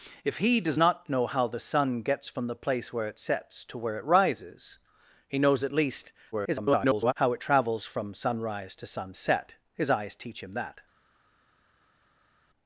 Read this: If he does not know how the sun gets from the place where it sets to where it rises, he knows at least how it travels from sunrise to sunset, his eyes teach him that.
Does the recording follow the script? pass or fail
fail